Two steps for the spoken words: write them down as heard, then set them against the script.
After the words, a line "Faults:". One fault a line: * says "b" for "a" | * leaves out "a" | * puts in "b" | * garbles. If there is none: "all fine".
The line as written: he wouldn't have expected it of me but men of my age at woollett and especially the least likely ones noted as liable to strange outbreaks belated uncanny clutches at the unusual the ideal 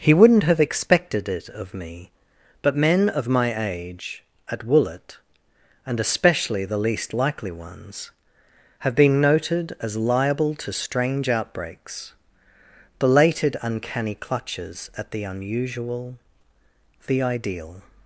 he wouldn't have expected it of me but men of my age at woollett and especially the least likely ones have been noted as liable to strange outbreaks belated uncanny clutches at the unusual the ideal
Faults:
* puts in "have been"